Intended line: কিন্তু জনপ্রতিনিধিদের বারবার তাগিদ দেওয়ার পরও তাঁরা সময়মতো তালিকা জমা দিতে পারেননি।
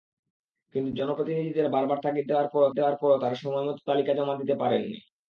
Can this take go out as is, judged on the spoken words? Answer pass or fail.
fail